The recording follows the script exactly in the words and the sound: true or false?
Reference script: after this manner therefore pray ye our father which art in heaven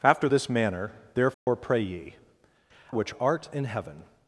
false